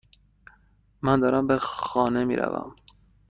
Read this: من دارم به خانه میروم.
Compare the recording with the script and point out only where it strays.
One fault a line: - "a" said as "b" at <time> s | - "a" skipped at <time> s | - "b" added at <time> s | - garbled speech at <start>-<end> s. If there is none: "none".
none